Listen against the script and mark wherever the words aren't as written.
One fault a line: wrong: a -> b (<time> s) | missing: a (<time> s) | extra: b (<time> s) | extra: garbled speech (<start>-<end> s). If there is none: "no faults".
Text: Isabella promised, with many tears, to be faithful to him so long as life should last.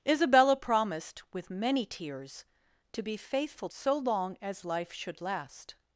missing: to him (3.7 s)